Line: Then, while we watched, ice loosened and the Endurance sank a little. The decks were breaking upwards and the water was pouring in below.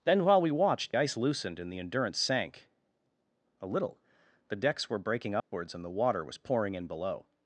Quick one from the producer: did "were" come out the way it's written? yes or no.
yes